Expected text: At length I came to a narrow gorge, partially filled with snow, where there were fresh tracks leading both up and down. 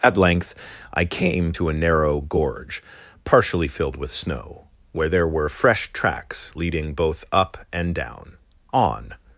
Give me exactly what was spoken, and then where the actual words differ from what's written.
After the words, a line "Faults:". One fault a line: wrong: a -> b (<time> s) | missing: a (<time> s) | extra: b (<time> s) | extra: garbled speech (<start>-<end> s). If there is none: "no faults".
At length I came to a narrow gorge, partially filled with snow, where there were fresh tracks leading both up and down. On
Faults:
extra: On (8.7 s)